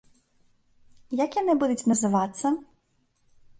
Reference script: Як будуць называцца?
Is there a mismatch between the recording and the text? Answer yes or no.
yes